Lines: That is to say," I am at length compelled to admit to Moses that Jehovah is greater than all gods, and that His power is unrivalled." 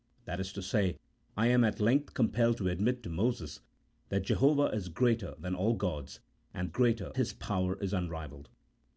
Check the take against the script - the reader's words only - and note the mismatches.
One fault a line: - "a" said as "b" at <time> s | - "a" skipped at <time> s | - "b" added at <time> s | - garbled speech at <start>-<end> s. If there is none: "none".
- "that" said as "greater" at 6.7 s